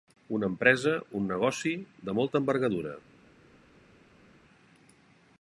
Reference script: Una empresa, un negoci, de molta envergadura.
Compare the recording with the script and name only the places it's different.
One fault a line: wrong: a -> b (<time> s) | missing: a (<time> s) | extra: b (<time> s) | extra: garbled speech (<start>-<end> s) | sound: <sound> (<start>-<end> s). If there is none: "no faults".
no faults